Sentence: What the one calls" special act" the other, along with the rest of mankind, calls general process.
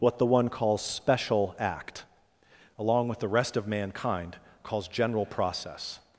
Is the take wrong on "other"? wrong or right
wrong